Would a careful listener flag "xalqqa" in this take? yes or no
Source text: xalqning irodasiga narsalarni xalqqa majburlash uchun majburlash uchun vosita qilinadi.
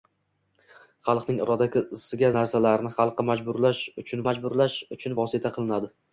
no